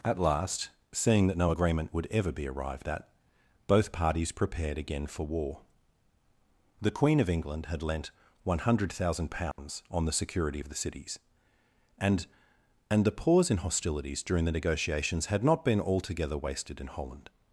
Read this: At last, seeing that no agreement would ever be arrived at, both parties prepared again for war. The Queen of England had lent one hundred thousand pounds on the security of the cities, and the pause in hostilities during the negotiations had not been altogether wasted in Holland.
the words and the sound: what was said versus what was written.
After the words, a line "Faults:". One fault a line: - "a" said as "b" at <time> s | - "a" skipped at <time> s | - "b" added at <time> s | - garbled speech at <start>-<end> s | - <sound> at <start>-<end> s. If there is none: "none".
At last, seeing that no agreement would ever be arrived at, both parties prepared again for war. The Queen of England had lent one hundred thousand pounds on the security of the cities, and and the pause in hostilities during the negotiations had not been altogether wasted in Holland.
Faults:
- dropout at 9.5-9.6 s
- "and" added at 12.9 s